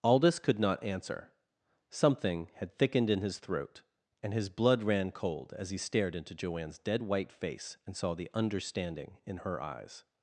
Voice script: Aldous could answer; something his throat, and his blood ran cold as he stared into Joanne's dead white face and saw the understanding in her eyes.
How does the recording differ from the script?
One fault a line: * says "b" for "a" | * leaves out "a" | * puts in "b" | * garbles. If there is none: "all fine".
* puts in "not"
* puts in "had thickened in"